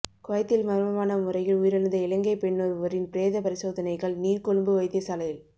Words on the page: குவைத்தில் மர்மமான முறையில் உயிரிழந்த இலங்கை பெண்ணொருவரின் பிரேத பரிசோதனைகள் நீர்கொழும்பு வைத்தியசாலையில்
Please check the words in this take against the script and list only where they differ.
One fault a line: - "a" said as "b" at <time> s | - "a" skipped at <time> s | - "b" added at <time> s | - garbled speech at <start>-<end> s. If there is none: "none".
none